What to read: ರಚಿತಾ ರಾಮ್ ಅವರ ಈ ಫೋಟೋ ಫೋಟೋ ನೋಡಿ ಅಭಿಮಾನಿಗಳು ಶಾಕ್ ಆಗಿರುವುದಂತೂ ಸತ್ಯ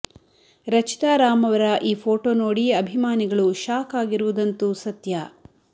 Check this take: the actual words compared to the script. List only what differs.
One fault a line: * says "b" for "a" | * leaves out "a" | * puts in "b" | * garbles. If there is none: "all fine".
* leaves out "ಫೋಟೋ"